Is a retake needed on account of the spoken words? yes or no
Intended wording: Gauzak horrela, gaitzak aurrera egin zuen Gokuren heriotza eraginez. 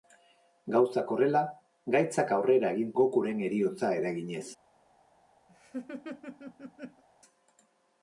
yes